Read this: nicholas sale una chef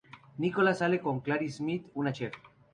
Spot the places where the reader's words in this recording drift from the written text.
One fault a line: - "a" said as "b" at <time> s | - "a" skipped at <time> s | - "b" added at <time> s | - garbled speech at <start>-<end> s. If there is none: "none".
- "con claire smith" added at 1.0 s